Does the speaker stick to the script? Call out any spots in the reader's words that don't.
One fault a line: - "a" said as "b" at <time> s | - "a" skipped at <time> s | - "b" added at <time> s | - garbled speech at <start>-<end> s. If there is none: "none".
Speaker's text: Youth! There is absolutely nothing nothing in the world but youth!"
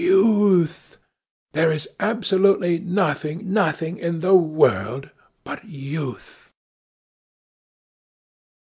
none